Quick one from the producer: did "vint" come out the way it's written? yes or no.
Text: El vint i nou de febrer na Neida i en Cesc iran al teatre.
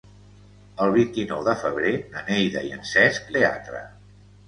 yes